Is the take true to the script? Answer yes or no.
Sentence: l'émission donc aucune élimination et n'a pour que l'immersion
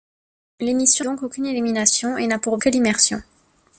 yes